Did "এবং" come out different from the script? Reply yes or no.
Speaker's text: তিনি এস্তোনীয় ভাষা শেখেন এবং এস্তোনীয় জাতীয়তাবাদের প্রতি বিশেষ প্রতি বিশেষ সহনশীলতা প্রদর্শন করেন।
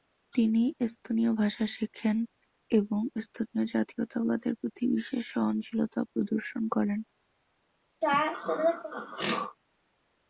no